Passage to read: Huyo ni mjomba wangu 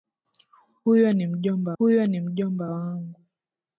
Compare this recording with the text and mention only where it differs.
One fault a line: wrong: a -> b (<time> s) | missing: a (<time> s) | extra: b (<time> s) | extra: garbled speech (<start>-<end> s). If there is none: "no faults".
extra: huyo ni mjomba (1.8 s)